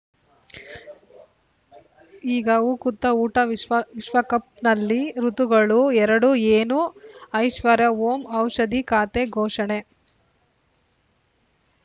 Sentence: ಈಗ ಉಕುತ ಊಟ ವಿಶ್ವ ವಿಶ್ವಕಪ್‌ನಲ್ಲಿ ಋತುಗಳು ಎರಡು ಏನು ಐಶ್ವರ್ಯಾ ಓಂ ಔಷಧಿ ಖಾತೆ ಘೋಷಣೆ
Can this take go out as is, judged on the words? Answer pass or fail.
pass